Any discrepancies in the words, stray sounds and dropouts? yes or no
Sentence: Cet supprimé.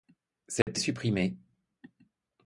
yes